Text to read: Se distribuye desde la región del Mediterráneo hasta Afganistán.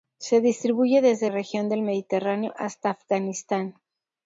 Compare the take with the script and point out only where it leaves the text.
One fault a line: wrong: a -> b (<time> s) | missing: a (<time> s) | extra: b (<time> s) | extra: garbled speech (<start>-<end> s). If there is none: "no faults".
missing: la (1.3 s)